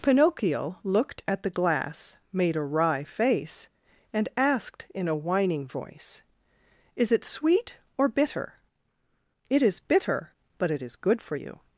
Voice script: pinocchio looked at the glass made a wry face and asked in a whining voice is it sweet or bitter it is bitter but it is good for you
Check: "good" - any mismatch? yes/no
no